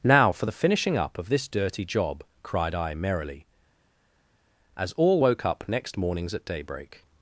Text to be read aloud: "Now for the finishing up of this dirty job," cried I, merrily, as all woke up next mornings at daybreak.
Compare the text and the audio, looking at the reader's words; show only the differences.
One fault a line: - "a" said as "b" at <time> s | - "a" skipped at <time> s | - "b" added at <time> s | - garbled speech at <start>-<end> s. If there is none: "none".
none